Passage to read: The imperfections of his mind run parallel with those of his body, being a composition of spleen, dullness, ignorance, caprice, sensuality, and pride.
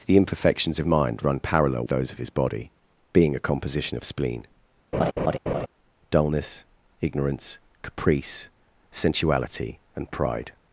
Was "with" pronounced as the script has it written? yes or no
no